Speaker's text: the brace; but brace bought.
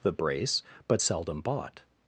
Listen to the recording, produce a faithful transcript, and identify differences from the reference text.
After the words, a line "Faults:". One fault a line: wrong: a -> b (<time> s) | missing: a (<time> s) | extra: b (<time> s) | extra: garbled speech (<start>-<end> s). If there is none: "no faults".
the brace; but seldom bought.
Faults:
wrong: brace -> seldom (1.0 s)